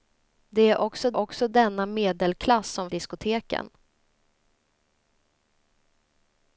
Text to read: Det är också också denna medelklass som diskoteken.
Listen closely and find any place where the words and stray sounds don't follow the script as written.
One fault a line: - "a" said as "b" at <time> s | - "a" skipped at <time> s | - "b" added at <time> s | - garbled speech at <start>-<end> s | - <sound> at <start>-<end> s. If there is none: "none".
none